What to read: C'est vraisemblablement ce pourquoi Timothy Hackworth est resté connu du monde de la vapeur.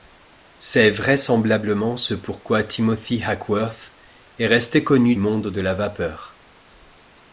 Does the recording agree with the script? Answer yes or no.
no